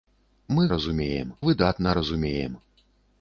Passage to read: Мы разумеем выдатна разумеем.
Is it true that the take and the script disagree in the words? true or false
false